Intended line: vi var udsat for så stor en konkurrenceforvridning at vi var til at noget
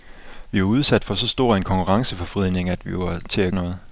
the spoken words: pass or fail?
pass